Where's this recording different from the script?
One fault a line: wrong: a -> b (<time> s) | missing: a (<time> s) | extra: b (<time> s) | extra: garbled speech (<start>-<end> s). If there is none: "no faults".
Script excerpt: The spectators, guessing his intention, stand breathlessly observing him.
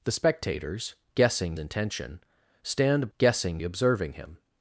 missing: his (1.6 s)
wrong: breathlessly -> guessing (3.2 s)